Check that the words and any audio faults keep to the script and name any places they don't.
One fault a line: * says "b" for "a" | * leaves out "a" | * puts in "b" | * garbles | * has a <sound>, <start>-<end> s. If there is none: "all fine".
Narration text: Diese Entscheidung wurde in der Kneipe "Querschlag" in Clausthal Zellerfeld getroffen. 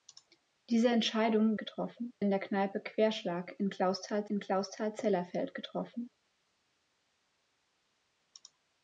* says "getroffen" for "wurde"
* puts in "in Clausthal"